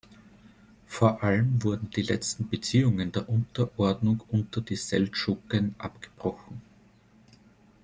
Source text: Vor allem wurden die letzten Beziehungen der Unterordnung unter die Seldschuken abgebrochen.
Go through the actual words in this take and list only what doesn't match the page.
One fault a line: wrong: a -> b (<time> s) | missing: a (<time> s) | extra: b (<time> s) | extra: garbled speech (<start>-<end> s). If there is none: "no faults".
no faults